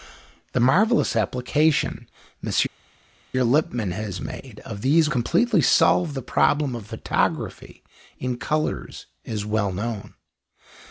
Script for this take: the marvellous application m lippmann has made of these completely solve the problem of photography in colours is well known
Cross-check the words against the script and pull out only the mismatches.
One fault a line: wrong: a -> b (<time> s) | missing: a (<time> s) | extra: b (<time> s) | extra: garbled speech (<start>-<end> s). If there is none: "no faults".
no faults